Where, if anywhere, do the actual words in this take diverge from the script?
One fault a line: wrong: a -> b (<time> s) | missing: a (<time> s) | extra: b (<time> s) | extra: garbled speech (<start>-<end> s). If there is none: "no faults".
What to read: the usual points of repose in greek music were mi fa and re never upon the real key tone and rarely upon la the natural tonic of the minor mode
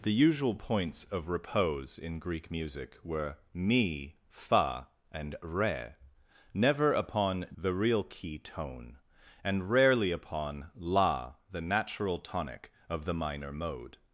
no faults